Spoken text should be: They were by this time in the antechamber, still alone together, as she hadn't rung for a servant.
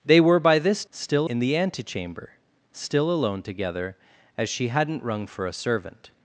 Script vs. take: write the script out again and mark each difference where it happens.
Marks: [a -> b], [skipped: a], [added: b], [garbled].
They were by this [time -> still] in the antechamber, still alone together, as she hadn't rung for a servant.